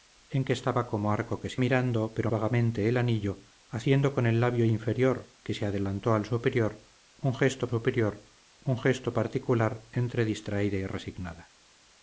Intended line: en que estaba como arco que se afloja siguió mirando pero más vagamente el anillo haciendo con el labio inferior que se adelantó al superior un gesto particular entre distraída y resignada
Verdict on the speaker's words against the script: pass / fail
fail